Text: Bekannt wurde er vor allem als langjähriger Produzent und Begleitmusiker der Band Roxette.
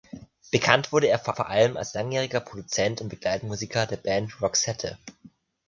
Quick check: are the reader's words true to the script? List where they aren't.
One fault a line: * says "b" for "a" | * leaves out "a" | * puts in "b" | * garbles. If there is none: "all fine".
* puts in "vor"